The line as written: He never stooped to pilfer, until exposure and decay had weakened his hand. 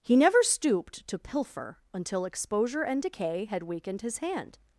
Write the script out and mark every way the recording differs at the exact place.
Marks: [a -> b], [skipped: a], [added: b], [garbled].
He never stooped to pilfer, until exposure and decay had weakened his hand.